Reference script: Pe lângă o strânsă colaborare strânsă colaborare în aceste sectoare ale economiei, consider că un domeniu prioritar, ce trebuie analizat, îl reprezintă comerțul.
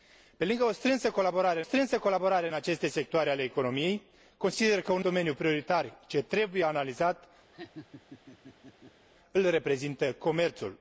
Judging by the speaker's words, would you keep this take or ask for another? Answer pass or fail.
pass